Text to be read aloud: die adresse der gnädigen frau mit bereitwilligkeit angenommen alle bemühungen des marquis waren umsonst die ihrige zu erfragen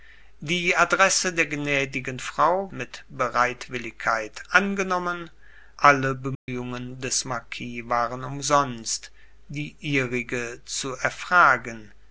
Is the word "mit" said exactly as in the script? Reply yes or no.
yes